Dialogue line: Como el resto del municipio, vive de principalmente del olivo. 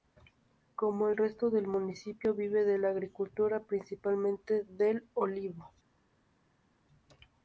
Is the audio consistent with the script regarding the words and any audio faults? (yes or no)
no